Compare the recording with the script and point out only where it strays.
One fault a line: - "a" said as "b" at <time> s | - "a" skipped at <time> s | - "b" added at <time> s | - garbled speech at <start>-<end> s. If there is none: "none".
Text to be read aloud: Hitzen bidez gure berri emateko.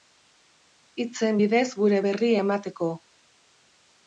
none